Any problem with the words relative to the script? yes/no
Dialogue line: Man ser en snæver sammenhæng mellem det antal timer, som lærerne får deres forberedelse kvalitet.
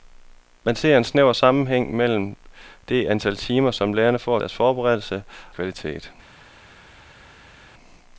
no